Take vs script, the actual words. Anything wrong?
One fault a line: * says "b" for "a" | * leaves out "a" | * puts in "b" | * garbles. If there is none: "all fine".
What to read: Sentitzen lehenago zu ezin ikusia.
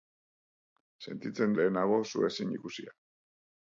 all fine